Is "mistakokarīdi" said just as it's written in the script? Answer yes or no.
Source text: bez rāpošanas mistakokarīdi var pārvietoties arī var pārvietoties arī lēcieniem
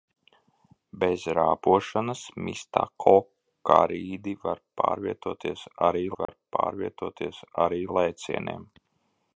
yes